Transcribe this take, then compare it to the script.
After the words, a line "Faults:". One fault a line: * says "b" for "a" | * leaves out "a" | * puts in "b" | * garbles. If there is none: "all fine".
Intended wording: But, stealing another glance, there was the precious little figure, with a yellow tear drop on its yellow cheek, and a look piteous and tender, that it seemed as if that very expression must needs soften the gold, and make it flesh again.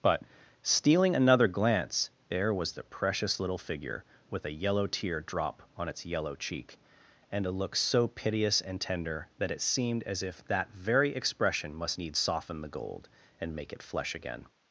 But, stealing another glance, there was the precious little figure, with a yellow tear drop on its yellow cheek, and a look so piteous and tender, that it seemed as if that very expression must needs soften the gold, and make it flesh again.
Faults:
* puts in "so"